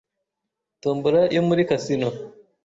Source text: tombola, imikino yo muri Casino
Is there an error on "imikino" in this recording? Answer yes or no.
yes